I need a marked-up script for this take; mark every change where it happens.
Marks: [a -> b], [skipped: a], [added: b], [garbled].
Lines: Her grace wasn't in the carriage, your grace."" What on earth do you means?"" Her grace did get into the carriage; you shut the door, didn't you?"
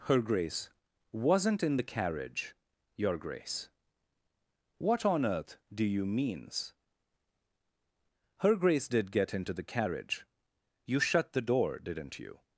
Her grace wasn't in the carriage, your grace."" What on earth do you means?"" Her grace did get into the carriage; you shut the door, didn't you?"